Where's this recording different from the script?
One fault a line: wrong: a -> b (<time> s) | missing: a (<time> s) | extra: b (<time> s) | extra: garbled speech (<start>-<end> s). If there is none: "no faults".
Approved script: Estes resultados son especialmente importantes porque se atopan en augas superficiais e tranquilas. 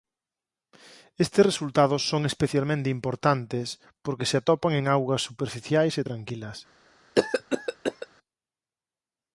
no faults